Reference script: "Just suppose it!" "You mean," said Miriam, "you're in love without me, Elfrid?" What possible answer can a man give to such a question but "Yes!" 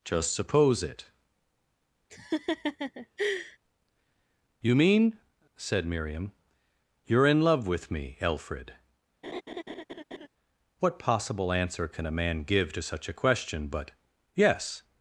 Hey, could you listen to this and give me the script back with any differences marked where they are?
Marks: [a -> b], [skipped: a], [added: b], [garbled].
"Just suppose it!" "You mean," said Miriam, "you're in love [without -> with] me, Elfrid?" What possible answer can a man give to such a question but "Yes!"